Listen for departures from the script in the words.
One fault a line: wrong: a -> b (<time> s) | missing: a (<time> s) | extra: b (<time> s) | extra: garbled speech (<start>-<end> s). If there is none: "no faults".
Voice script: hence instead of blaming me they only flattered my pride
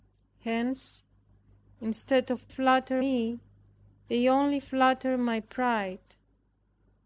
wrong: blaming -> flattered (2.5 s)